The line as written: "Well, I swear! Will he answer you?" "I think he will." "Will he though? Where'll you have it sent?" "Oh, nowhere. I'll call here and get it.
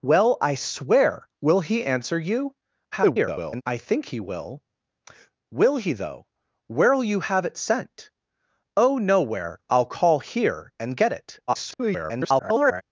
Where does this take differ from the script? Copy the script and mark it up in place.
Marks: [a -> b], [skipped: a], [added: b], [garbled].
"Well, I swear! Will he answer you?" [garbled] "I think he will." "Will he though? Where'll you have it sent?" "Oh, nowhere. I'll call here and get it. [garbled]